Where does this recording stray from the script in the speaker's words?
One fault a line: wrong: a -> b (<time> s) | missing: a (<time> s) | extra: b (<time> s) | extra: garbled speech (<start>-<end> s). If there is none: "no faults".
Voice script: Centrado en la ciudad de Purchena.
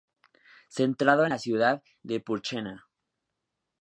no faults